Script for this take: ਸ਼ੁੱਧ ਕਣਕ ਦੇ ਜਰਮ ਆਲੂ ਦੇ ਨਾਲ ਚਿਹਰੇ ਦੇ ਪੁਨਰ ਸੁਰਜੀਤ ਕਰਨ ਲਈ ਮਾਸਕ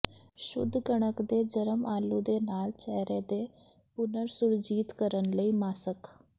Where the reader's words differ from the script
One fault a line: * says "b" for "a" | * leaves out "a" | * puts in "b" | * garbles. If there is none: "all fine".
all fine